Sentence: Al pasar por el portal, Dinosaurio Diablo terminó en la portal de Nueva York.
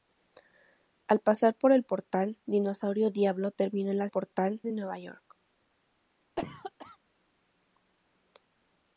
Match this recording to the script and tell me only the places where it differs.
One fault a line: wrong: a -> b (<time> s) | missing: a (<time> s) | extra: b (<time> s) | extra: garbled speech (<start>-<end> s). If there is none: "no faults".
no faults